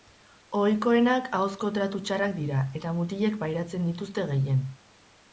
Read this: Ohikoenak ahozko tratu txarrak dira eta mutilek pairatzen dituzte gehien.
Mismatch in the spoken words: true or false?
false